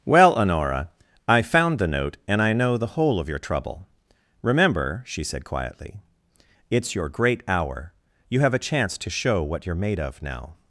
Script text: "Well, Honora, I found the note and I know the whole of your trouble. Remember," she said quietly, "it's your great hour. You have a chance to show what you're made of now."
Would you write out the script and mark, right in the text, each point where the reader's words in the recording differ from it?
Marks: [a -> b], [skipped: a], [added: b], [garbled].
"Well, Honora, I found the note and I know the whole of your trouble. Remember," she said quietly, "it's your great hour. You have a chance to show what you're made of now."